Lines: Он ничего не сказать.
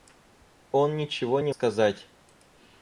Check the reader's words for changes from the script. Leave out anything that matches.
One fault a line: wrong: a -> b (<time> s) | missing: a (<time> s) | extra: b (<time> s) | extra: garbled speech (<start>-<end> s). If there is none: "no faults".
no faults